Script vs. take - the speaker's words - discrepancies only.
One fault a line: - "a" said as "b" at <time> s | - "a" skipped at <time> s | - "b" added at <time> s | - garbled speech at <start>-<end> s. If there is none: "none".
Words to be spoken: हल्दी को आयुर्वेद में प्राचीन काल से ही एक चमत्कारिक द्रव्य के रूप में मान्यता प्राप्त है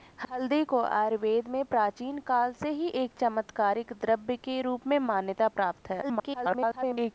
- garbled speech at 6.0-7.1 s